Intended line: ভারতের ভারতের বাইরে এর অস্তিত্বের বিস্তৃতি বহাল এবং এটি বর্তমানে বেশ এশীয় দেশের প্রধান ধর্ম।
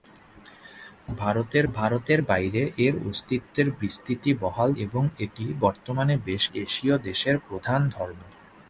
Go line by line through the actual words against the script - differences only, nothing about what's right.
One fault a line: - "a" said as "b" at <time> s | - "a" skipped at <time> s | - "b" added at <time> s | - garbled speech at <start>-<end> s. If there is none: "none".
none